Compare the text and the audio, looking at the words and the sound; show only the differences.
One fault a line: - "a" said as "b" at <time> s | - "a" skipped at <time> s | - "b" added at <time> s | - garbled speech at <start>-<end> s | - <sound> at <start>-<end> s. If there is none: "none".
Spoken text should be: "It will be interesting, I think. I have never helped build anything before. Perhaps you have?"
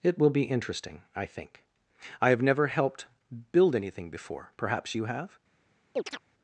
- chirp at 5.9-6.2 s